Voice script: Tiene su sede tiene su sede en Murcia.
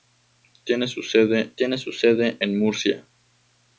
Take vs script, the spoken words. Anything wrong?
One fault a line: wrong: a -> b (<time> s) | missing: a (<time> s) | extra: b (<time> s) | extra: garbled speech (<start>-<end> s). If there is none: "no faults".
no faults